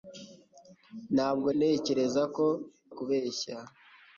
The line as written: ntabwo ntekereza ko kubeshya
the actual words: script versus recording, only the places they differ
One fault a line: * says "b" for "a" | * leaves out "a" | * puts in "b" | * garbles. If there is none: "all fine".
all fine